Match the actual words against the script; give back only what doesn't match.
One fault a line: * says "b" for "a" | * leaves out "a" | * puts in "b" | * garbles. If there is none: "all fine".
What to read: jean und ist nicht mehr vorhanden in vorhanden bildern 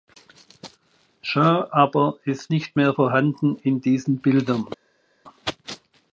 * says "aber" for "und"
* says "diesen" for "vorhanden"